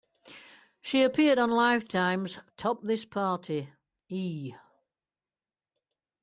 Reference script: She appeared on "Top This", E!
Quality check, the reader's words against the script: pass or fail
fail